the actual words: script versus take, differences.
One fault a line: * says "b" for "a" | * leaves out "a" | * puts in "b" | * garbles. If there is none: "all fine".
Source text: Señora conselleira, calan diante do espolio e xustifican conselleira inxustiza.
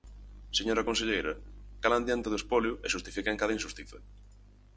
* says "cada" for "conselleira"